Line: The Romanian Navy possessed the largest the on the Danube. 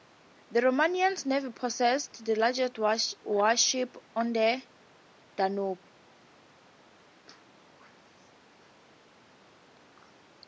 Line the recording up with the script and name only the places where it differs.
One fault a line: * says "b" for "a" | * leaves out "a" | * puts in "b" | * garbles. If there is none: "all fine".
* says "warships" for "the"